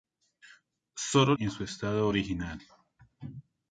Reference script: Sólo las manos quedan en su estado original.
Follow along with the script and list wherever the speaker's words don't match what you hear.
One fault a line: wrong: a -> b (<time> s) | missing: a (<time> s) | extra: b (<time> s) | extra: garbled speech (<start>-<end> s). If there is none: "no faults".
missing: las manos quedan (1.4 s)